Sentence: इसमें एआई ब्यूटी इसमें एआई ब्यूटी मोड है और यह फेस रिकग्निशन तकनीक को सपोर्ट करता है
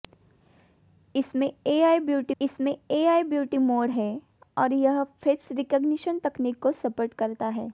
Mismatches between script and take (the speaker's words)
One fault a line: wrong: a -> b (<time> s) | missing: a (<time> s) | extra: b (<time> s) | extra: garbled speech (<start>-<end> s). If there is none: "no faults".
no faults